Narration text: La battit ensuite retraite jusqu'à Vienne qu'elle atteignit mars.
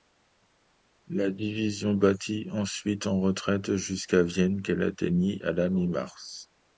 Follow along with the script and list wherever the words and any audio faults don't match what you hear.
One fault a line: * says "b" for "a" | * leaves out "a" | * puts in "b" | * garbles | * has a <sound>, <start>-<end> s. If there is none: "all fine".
* puts in "division"
* puts in "en"
* puts in "à la mi"